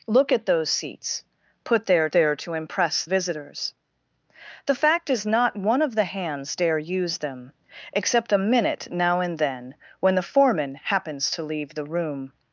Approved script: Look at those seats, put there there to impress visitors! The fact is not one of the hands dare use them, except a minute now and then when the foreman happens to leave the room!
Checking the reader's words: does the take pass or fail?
pass